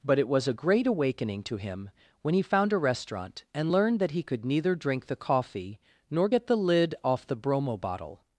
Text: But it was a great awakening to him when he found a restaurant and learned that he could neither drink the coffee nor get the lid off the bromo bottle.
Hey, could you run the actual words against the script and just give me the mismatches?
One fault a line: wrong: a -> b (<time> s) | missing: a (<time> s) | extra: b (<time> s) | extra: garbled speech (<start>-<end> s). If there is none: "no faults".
no faults